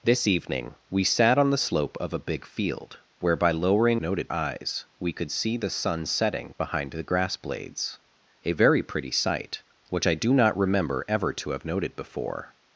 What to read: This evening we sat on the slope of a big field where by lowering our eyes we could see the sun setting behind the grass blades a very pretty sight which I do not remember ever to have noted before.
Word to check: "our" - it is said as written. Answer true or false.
false